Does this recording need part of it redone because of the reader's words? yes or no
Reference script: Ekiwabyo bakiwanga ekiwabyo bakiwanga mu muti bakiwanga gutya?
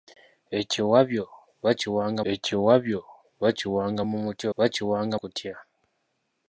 no